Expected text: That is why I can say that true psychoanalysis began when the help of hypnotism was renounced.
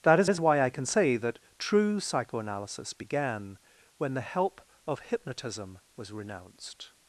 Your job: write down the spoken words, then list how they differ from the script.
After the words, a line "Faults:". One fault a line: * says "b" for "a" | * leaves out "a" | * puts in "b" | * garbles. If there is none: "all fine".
That is is why I can say that true psychoanalysis began when the help of hypnotism was renounced.
Faults:
* puts in "is"